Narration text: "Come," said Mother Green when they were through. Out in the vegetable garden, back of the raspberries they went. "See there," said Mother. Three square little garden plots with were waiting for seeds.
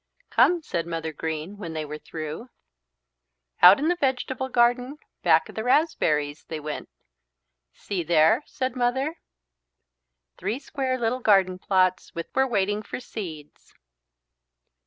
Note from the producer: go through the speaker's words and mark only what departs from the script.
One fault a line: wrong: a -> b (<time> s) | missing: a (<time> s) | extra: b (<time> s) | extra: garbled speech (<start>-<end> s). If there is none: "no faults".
no faults